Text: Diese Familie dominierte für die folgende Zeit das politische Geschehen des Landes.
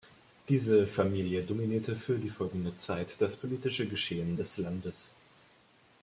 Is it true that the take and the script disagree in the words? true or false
false